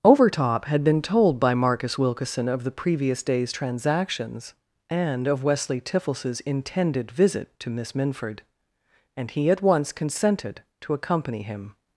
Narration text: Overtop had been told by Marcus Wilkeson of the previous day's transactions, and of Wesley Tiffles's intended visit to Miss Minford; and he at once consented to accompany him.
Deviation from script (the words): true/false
false